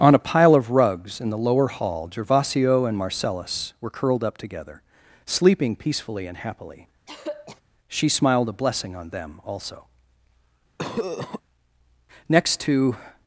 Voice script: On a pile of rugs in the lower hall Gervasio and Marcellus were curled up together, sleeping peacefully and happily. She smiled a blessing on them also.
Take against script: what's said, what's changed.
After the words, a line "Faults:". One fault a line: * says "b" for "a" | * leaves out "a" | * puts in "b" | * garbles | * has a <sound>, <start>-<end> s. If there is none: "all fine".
On a pile of rugs in the lower hall Gervasio and Marcellus were curled up together, sleeping peacefully and happily. She smiled a blessing on them also. Next to
Faults:
* has a throat clearing, 7.1-7.6 s
* has a cough, 10.8-11.4 s
* puts in "Next to"